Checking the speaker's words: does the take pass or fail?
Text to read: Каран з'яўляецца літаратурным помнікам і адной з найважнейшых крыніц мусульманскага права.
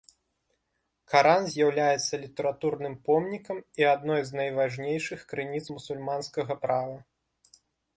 pass